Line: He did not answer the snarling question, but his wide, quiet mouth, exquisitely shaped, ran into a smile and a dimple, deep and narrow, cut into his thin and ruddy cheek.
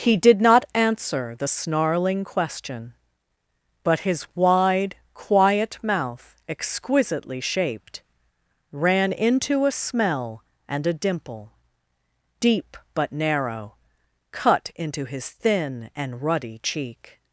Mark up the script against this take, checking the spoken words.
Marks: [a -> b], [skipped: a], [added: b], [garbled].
He did not answer the snarling question, but his wide, quiet mouth, exquisitely shaped, ran into a [smile -> smell] and a dimple, deep [and -> but] narrow, cut into his thin and ruddy cheek.